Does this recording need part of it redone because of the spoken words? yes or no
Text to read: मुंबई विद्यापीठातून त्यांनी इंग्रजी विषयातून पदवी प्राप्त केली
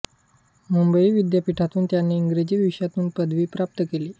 no